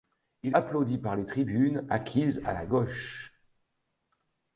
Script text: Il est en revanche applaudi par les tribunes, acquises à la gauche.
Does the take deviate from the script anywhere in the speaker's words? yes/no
yes